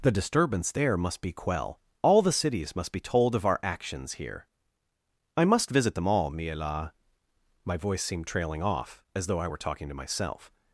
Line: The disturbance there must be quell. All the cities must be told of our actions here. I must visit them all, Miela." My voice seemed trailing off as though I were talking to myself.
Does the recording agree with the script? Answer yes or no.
yes